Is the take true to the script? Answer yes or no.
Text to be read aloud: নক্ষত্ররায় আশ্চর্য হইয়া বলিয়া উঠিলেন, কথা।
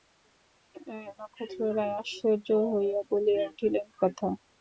yes